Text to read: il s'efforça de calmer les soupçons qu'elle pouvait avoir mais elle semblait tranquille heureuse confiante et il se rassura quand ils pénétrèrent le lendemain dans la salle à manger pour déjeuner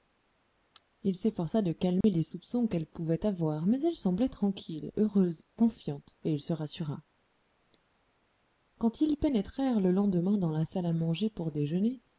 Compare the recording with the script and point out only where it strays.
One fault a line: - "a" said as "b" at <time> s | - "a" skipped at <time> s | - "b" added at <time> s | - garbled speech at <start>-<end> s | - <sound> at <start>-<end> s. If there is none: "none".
- dropout at 2.0-2.0 s